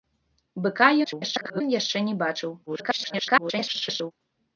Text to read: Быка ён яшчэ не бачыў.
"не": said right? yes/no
yes